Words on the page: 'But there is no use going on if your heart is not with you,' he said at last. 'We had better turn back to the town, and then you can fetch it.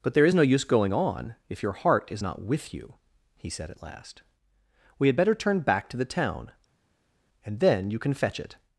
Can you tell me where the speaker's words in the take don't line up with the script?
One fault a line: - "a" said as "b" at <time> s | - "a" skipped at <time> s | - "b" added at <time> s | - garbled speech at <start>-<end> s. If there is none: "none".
none